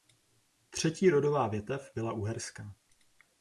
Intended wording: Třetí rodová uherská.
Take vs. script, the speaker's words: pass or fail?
fail